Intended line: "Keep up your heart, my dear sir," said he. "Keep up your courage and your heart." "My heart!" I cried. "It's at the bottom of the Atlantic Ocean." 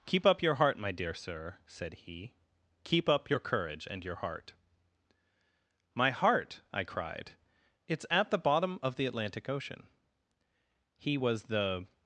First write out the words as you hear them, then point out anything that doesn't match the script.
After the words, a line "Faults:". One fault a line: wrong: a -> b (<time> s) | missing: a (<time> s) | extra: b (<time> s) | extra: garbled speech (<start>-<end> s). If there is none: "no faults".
"Keep up your heart, my dear sir," said he. "Keep up your courage and your heart." "My heart!" I cried. "It's at the bottom of the Atlantic Ocean." He was the
Faults:
extra: He was the (11.0 s)